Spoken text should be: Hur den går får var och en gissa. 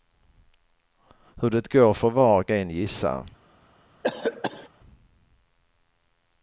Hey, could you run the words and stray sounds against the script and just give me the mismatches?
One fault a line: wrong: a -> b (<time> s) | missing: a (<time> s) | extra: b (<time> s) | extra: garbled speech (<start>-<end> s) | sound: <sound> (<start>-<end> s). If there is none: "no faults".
wrong: den -> det (1.5 s)
sound: cough (4.0-4.7 s)